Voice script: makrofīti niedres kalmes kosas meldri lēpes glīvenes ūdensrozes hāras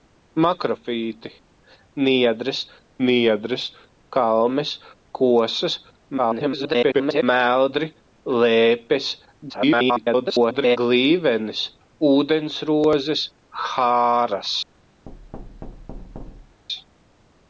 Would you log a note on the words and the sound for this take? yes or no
yes